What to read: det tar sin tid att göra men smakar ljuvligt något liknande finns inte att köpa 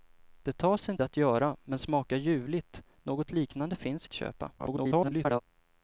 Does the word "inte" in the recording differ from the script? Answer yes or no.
yes